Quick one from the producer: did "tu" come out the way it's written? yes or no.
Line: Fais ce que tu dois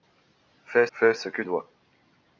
no